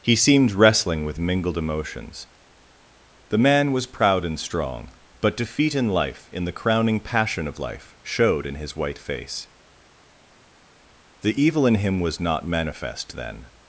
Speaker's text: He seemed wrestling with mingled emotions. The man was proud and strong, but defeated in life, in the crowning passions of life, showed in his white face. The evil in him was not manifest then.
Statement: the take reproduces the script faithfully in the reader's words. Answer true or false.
false